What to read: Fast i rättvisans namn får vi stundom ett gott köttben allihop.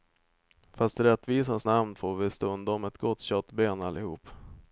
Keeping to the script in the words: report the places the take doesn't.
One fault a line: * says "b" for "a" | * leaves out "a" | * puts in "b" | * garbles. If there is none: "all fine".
all fine